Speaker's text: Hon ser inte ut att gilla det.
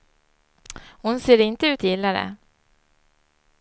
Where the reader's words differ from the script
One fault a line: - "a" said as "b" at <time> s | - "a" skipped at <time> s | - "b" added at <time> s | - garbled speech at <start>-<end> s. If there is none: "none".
- "att" skipped at 1.8 s